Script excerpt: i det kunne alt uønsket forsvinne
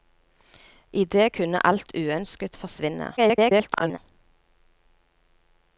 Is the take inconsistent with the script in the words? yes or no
yes